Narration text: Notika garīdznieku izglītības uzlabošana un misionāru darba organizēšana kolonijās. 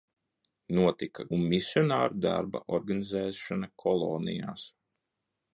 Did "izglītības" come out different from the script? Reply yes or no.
yes